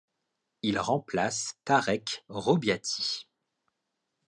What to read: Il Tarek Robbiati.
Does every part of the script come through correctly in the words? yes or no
no